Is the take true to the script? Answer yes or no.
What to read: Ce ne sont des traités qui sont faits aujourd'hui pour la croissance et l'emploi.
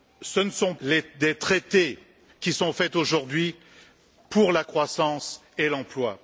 yes